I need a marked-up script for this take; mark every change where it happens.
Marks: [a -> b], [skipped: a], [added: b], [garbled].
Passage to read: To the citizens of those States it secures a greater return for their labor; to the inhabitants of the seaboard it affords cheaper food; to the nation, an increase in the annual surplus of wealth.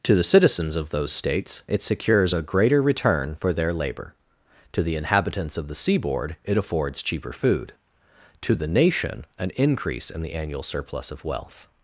To the citizens of those States it secures a greater return for their labor; to the inhabitants of the seaboard it affords cheaper food; to the nation, an increase in the annual surplus of wealth.